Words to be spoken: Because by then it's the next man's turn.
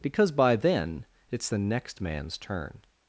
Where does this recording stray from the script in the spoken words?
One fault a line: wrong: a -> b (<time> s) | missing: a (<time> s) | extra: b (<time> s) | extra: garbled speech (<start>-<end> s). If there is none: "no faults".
no faults